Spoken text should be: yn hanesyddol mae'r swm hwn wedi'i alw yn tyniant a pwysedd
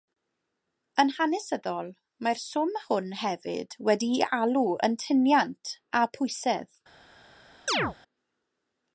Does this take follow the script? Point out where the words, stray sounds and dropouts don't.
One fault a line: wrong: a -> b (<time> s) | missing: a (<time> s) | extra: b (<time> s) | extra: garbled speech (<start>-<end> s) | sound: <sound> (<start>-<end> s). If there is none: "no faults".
extra: hefyd (3.2 s)
sound: chirp (7.7-8.0 s)